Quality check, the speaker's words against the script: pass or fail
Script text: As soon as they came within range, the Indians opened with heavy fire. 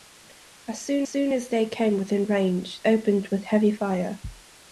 fail